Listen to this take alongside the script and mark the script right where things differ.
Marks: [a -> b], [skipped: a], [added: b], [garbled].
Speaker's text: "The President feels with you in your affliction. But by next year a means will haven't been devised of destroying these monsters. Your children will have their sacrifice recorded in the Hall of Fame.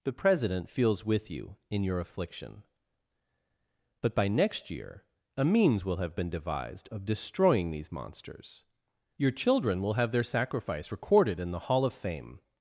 "The President feels with you in your affliction. But by next year a means will [haven't -> have] been devised of destroying these monsters. Your children will have their sacrifice recorded in the Hall of Fame.